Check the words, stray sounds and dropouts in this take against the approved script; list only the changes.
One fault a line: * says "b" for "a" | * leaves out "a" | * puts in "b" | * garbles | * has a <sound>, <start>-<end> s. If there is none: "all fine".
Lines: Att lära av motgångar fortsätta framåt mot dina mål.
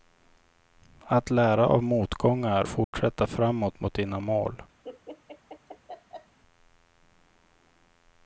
* has a dropout, 2.8-2.9 s
* has a laugh, 4.8-6.4 s